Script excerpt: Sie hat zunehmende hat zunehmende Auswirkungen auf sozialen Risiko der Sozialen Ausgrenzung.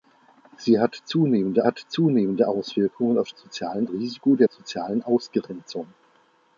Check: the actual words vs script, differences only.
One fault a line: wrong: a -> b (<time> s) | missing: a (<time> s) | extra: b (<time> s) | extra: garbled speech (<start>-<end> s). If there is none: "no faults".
no faults